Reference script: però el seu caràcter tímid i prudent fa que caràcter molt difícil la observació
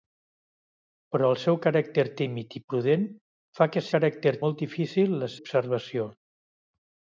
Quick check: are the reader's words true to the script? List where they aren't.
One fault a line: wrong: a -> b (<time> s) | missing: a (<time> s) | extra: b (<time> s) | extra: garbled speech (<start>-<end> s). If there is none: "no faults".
no faults